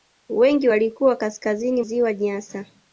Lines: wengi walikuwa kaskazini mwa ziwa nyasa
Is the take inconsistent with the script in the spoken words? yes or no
yes